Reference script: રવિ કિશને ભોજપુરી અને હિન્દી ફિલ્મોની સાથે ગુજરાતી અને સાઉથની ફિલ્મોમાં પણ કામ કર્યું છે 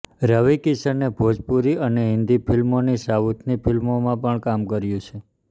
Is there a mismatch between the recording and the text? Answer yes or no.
yes